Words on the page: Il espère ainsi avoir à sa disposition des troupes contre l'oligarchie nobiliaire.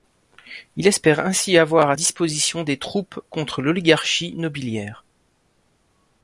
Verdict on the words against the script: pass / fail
fail